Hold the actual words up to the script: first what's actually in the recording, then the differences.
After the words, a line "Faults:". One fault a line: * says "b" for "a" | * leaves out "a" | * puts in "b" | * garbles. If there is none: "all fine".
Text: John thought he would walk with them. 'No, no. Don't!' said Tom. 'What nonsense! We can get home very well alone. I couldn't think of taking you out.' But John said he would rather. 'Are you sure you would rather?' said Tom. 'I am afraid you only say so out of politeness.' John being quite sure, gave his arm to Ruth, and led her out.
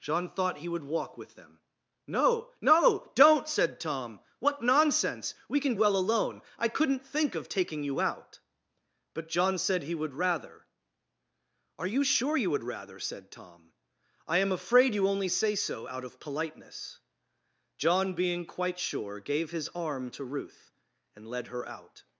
John thought he would walk with them. 'No, no. Don't!' said Tom. 'What nonsense! We can well alone. I couldn't think of taking you out.' But John said he would rather. 'Are you sure you would rather?' said Tom. 'I am afraid you only say so out of politeness.' John being quite sure, gave his arm to Ruth, and led her out.
Faults:
* leaves out "get home very"